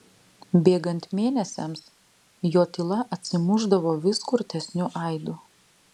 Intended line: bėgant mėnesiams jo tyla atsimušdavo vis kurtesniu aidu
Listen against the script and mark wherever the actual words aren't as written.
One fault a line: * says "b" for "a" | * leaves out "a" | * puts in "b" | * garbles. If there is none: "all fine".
all fine